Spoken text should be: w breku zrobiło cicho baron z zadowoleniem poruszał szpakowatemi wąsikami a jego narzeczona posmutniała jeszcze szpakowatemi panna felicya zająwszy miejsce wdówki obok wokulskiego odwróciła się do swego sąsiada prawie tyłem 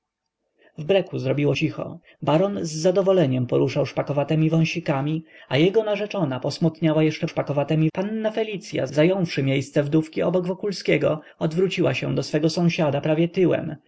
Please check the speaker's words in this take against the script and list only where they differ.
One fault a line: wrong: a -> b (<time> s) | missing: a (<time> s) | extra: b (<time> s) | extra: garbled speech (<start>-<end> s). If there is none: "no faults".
no faults